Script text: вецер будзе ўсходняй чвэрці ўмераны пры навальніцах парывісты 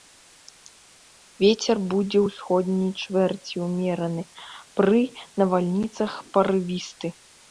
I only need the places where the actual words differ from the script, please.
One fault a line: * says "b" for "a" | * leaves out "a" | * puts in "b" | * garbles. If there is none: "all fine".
all fine